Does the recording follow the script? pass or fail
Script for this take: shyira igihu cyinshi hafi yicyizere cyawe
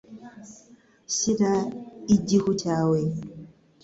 fail